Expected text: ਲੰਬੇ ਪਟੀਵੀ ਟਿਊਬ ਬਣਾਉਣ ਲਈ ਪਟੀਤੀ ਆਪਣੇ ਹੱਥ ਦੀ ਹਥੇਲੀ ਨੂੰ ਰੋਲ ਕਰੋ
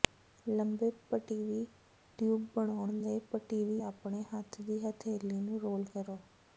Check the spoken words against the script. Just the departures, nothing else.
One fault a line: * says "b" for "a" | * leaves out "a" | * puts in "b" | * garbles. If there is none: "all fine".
all fine